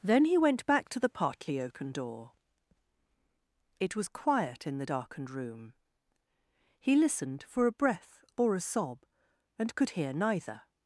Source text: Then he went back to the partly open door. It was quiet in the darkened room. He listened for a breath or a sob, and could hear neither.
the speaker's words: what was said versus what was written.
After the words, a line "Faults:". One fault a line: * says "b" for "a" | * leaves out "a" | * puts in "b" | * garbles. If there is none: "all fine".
Then he went back to the partly open door. It was quiet in the darkened room. He listened for a breath or a sob, and could hear neither.
Faults:
all fine